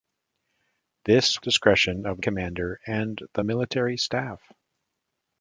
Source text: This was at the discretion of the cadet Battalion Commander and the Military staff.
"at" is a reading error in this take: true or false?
true